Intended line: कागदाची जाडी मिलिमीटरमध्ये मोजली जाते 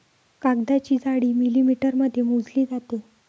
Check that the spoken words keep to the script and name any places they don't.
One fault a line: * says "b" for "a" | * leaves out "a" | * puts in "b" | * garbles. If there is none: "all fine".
all fine